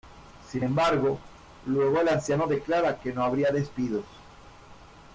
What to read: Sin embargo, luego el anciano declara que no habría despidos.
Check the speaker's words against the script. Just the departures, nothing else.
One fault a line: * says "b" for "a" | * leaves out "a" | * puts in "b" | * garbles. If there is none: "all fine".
all fine